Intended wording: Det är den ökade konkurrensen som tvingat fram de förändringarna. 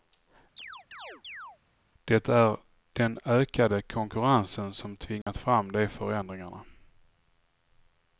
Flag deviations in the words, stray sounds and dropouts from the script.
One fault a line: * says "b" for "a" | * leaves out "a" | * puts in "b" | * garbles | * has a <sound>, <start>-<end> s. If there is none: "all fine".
* has a chirp, 0.6-1.6 s
* has a dropout, 5.2-5.3 s